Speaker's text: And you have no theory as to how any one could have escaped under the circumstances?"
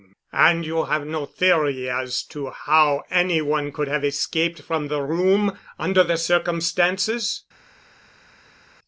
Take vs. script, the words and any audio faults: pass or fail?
fail